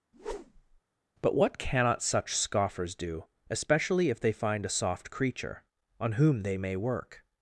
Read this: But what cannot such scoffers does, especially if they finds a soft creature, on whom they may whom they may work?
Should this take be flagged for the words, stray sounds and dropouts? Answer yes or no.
yes